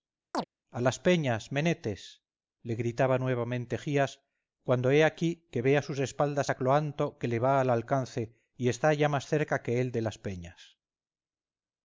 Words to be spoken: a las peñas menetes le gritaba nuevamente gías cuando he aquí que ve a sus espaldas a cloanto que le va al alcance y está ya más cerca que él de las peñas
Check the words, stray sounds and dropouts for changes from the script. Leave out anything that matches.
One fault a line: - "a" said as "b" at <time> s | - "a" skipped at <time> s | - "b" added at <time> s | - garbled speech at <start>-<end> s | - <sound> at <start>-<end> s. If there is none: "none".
- chirp at 0.3-0.4 s